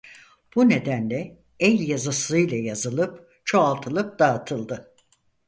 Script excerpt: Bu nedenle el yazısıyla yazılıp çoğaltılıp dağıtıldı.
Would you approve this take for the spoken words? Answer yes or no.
yes